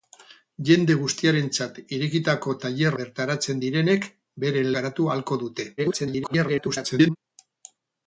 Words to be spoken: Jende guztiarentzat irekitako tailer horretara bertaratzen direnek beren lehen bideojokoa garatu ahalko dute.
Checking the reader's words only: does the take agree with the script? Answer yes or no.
no